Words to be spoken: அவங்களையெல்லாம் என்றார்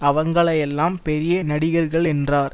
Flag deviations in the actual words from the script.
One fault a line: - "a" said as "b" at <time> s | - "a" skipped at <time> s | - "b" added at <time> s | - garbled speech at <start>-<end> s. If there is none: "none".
- "பெரிய நடிகர்கள்" added at 1.0 s